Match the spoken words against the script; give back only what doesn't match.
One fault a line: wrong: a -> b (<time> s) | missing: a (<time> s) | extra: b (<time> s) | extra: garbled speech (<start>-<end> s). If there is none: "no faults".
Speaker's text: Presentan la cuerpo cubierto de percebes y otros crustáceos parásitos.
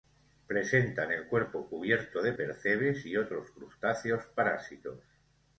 wrong: la -> el (1.1 s)